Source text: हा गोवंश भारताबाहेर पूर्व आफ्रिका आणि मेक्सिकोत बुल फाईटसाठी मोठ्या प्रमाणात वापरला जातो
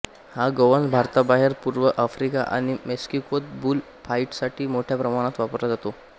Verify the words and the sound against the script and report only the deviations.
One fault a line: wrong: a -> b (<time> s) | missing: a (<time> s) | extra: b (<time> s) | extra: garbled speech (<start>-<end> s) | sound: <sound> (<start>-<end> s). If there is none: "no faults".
no faults